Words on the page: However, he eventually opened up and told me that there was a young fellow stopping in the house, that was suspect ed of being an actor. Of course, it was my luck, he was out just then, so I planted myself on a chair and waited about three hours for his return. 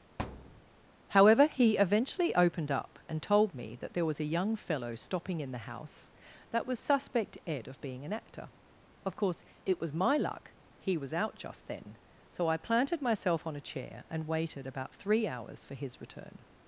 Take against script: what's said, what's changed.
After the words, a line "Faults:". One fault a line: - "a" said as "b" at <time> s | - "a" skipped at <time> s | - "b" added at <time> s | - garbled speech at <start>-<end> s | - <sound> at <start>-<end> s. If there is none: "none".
However, he eventually opened up and told me that there was a young fellow stopping in the house, that was suspect ed of being an actor. Of course, it was my luck, he was out just then, so I planted myself on a chair and waited about three hours for his return.
Faults:
- thud at 0.2-0.6 s